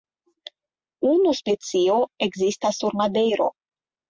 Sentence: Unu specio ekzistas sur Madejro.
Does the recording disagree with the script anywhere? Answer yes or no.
no